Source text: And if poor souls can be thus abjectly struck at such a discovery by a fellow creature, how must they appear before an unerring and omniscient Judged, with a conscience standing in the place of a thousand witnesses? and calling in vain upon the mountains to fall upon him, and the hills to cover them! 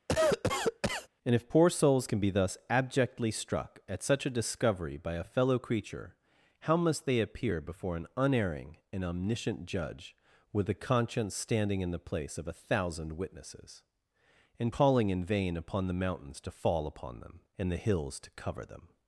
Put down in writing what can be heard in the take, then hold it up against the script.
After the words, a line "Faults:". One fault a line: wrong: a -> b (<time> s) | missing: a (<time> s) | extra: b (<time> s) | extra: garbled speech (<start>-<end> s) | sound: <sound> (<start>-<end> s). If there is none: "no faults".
And if poor souls can be thus abjectly struck at such a discovery by a fellow creature, how must they appear before an unerring and omniscient Judge, with a conscience standing in the place of a thousand witnesses? and calling in vain upon the mountains to fall upon them, and the hills to cover them!
Faults:
sound: cough (0.1-1.1 s)
wrong: Judged -> Judge (9.7 s)
wrong: him -> them (17.2 s)